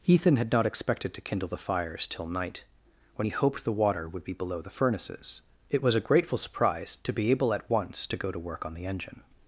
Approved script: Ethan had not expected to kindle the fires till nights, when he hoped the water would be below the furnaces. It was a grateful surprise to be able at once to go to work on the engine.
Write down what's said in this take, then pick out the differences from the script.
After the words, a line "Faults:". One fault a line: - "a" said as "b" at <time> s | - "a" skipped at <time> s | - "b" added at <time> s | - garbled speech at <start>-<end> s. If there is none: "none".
Ethan had not expected to kindle the fires till night, when he hoped the water would be below the furnaces. It was a grateful surprise to be able at once to go to work on the engine.
Faults:
- "nights" said as "night" at 2.2 s